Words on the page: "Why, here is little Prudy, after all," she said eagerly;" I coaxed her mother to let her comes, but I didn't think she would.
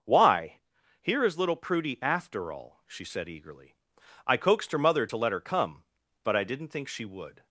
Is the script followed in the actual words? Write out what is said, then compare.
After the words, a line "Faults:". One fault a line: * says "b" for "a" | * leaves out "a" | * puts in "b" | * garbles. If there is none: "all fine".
"Why, here is little Prudy, after all," she said eagerly;" I coaxed her mother to let her come, but I didn't think she would.
Faults:
* says "come" for "comes"